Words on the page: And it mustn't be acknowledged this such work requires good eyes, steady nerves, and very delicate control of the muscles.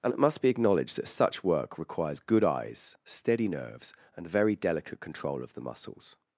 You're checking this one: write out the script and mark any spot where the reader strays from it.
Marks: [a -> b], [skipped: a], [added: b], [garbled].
And it [mustn't -> must] be acknowledged [this -> that] such work requires good eyes, steady nerves, and very delicate control of the muscles.